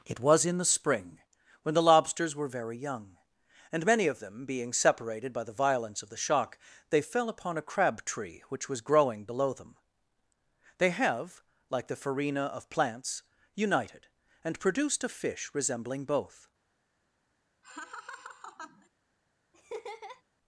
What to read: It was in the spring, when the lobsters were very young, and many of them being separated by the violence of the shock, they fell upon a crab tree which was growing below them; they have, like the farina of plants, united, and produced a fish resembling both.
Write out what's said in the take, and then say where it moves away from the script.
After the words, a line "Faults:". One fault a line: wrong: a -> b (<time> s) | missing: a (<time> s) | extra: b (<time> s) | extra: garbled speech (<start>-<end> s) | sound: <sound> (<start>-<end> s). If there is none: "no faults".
It was in the spring, when the lobsters were very young, and many of them being separated by the violence of the shock, they fell upon a crab tree which was growing below them; they have, like the farina of plants, united, and produced a fish resembling both.
Faults:
sound: laugh (17.6-18.9 s)
sound: laugh (19.5-20.2 s)